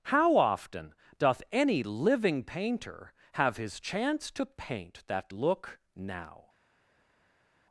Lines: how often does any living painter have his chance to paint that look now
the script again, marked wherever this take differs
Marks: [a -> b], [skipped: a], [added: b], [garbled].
how often [does -> doth] any living painter have his chance to paint that look now